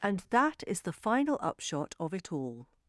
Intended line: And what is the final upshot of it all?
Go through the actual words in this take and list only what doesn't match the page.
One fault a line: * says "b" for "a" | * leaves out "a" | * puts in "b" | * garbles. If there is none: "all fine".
* says "that" for "what"